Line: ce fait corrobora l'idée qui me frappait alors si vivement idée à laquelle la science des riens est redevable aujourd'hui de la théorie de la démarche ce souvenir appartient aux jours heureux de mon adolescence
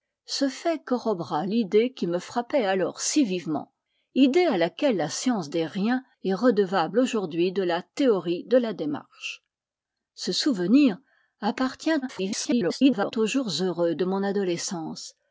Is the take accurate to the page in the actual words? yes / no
no